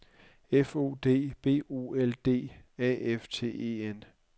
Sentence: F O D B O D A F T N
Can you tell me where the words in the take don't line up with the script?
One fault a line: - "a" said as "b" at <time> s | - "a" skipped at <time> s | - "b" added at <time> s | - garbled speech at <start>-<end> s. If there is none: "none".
- "L" added at 1.9 s
- "E" added at 3.5 s